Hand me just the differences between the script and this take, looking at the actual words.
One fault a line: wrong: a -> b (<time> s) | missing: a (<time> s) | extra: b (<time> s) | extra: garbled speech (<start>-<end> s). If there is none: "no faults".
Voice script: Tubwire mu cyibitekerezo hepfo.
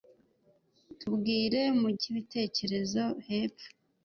no faults